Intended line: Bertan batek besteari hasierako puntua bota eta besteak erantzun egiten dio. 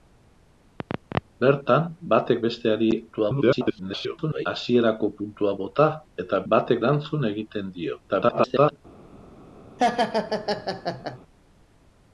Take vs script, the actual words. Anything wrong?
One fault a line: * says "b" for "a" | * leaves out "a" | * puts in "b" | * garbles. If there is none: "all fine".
* garbles
* says "batek" for "besteak"
* garbles